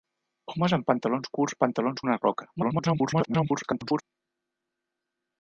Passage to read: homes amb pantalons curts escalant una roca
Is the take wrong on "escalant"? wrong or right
wrong